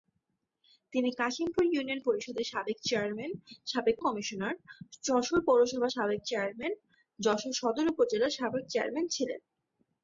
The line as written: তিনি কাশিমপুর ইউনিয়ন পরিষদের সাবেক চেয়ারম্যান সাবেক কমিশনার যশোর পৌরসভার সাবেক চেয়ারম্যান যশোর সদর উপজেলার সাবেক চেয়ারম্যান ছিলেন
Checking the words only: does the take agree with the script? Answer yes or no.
yes